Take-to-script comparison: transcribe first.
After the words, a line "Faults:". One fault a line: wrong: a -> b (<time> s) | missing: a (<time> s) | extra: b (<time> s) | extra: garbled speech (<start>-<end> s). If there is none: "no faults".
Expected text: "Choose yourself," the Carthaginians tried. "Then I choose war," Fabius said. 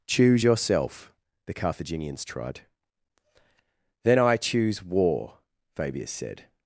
"Choose yourself," the Carthaginians tried. "Then I choose war," Fabius said.
Faults:
no faults